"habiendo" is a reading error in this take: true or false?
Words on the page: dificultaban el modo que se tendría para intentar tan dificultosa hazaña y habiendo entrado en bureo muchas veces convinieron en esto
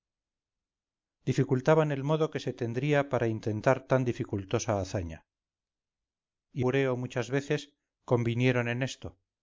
true